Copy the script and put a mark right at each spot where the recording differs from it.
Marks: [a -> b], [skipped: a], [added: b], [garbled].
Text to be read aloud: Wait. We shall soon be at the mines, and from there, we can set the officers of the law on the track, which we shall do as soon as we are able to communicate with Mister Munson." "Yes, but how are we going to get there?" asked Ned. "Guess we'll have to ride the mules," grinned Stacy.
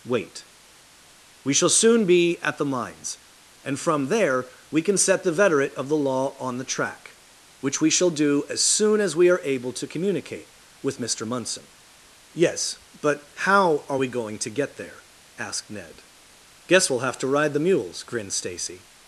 Wait. We shall soon be at the mines, and from there, we can set the [officers -> veterate] of the law on the track, which we shall do as soon as we are able to communicate with Mister Munson." "Yes, but how are we going to get there?" asked Ned. "Guess we'll have to ride the mules," grinned Stacy.